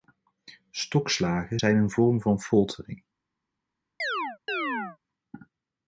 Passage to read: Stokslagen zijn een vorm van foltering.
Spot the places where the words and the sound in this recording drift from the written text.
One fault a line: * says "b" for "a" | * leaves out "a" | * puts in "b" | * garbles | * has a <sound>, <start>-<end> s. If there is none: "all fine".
* has a chirp, 4.0-5.0 s